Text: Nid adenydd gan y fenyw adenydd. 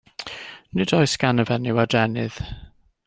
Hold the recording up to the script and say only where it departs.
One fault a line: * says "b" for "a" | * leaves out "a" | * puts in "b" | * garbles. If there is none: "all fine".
* says "oes" for "adenydd"